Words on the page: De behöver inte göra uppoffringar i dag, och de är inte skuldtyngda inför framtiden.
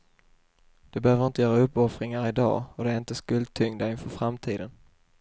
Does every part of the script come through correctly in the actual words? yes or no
yes